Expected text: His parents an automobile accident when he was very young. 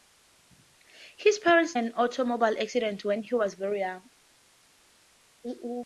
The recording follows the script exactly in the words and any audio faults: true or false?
true